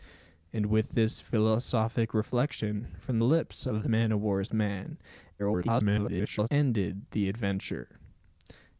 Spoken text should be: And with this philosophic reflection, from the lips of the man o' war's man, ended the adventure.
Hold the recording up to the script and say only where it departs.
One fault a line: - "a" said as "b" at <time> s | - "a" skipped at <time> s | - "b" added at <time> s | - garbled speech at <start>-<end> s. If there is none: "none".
- "the" skipped at 3.2 s
- garbled speech at 5.4-6.5 s